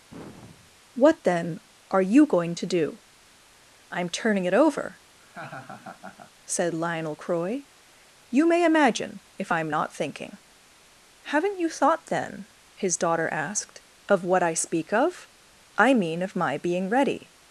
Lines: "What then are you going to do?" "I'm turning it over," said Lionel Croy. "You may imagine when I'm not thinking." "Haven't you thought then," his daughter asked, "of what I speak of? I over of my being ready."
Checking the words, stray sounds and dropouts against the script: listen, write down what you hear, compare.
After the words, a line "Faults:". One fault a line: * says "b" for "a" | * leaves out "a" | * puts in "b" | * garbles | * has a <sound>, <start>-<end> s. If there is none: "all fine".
"What then are you going to do?" "I'm turning it over," said Lionel Croy. "You may imagine if I'm not thinking." "Haven't you thought then," his daughter asked, "of what I speak of? I mean of my being ready."
Faults:
* has a sigh, 0.1-0.8 s
* has a laugh, 5.2-6.3 s
* says "if" for "when"
* says "mean" for "over"